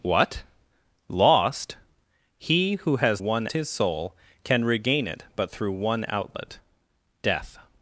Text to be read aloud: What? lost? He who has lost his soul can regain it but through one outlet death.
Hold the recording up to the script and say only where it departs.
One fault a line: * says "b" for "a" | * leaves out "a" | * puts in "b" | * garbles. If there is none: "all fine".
* says "one" for "lost"